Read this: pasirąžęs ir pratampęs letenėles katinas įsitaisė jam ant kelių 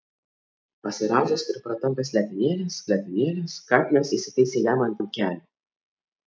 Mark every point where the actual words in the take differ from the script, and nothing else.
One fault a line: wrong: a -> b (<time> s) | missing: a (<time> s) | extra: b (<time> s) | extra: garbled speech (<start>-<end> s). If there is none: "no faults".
extra: letenėles (2.9 s)
extra: ant (5.0 s)